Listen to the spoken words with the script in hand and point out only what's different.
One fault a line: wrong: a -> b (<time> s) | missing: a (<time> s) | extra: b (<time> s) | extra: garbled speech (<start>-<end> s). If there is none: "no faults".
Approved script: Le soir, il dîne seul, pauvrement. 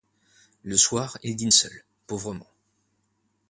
no faults